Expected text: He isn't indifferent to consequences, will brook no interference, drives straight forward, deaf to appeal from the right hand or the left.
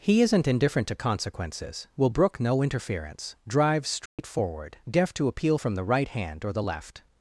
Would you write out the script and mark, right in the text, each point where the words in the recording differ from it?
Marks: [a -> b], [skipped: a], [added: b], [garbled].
He isn't indifferent to consequences, will brook no interference, drives straight forward, deaf to appeal from the right hand or the left.